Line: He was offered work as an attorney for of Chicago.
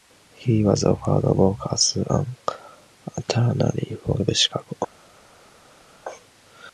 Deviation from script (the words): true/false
false